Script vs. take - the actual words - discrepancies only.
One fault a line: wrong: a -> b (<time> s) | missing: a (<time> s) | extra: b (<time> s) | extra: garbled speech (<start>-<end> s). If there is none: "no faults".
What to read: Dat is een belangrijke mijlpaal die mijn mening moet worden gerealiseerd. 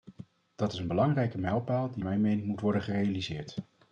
no faults